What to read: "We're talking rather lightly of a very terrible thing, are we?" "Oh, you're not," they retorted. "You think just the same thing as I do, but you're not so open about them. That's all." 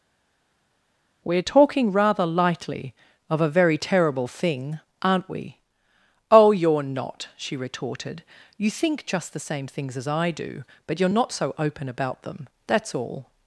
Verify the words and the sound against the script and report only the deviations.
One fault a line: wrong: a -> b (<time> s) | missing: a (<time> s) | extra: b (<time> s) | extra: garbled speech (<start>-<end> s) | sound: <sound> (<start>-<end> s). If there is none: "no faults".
wrong: are -> aren't (5.0 s)
wrong: they -> she (7.3 s)
wrong: thing -> things (9.7 s)